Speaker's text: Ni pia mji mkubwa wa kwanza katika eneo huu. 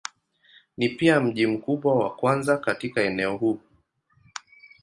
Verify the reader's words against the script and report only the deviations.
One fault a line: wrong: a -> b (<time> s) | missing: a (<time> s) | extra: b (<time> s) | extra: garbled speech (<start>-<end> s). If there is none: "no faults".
no faults